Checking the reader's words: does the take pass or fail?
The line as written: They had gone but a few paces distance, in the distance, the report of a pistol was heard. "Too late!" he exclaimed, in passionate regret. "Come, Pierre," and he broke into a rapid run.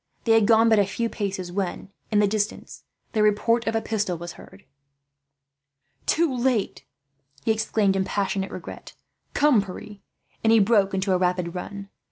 fail